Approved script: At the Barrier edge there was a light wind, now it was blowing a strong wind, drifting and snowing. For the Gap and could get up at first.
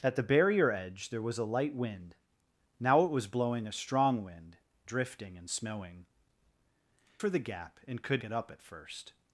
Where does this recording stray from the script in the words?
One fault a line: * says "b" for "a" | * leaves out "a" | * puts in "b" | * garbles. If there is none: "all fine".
all fine